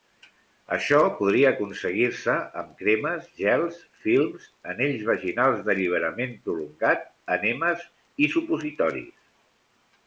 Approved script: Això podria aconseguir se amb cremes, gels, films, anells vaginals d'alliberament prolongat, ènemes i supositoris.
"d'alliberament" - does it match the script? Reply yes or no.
yes